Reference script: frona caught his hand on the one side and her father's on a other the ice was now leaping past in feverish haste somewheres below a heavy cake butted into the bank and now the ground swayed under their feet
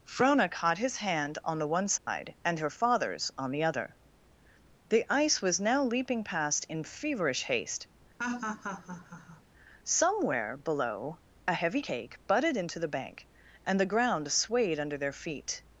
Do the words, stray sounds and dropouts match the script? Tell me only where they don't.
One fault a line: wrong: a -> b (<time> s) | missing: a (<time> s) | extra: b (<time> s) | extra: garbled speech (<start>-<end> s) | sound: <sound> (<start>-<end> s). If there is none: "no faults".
sound: dropout (2.0-2.1 s)
wrong: a -> the (3.5 s)
sound: laugh (8.2-9.4 s)
wrong: somewheres -> somewhere (9.8 s)
missing: now (13.8 s)